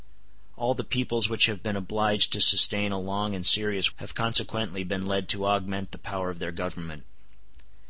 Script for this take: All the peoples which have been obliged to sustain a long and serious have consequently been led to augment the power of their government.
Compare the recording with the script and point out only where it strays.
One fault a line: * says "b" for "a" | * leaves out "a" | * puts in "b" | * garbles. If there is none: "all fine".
all fine